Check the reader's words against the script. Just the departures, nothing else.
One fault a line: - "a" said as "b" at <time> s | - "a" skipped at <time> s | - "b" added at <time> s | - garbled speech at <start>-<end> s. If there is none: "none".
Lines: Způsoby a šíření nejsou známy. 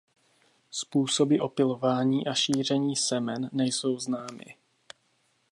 - "opylování" added at 1.4 s
- "semen" added at 3.0 s